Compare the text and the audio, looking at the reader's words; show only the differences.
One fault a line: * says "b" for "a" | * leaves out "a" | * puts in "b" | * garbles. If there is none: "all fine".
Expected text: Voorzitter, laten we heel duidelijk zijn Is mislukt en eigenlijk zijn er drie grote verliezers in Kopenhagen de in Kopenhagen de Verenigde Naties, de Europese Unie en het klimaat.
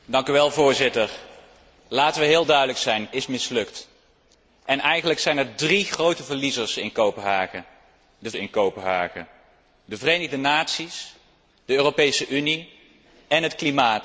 all fine